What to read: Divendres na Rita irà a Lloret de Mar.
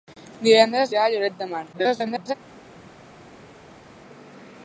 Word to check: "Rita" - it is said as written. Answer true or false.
false